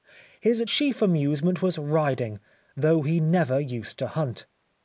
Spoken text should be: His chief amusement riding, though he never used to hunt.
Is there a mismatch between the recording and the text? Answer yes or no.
yes